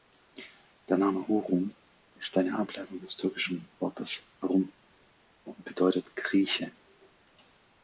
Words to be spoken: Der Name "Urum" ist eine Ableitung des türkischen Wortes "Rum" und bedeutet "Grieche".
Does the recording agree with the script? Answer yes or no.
yes